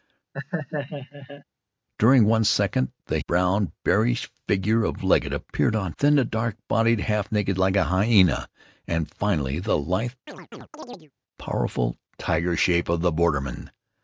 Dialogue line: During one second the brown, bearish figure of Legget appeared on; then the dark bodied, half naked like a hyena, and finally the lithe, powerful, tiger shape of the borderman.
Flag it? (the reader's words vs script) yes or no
no